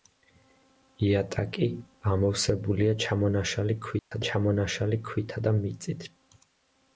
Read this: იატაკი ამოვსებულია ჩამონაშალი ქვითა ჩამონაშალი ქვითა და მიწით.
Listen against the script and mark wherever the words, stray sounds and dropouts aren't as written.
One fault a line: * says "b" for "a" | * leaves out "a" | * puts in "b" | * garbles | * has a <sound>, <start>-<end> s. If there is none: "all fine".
* has a dropout, 4.0-4.1 s